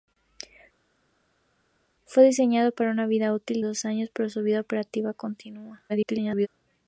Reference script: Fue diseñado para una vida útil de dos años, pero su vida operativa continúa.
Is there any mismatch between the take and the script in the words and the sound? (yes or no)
yes